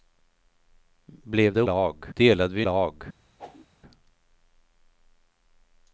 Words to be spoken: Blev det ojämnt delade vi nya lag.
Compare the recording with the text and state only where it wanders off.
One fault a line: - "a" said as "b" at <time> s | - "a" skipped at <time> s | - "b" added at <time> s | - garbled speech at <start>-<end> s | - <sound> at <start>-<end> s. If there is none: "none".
- "ojämnt" said as "lag" at 1.6 s
- "nya" skipped at 2.6 s
- whoosh at 3.4-3.7 s